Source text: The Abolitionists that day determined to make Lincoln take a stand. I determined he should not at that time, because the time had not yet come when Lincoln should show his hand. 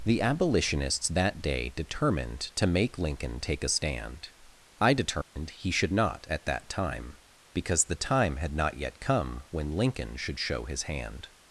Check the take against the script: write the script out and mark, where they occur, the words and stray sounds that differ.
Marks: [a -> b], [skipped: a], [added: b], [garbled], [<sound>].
The Abolitionists that day determined to make Lincoln take a stand. I determined [dropout] he should not at that time, because the time had not yet come when Lincoln should show his hand.